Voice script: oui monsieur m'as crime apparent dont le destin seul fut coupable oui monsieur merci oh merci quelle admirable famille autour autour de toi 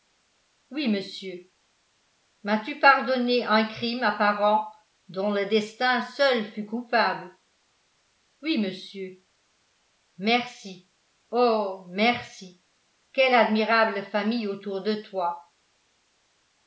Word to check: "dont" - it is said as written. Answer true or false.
true